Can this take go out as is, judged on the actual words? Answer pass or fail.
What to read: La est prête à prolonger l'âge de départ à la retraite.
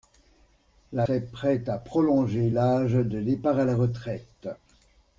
pass